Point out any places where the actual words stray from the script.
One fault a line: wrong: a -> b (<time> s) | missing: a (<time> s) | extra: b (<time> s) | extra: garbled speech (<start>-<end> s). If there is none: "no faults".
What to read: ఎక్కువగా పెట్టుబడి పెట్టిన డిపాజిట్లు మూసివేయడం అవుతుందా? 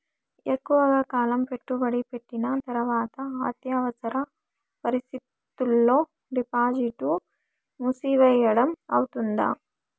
extra: కాలం (1.1 s)
extra: తర్వాత అత్యవసర పరిస్థితుల్లో (2.7 s)